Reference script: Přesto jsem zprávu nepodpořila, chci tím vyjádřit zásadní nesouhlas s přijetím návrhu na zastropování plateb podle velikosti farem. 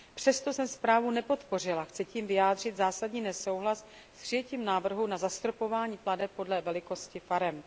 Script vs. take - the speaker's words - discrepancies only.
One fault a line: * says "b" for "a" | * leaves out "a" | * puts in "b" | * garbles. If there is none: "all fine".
all fine